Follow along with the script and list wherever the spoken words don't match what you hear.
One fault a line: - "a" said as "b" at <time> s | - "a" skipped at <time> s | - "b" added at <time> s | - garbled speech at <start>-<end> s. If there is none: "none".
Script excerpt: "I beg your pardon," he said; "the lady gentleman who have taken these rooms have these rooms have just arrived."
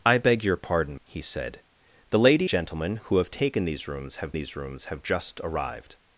none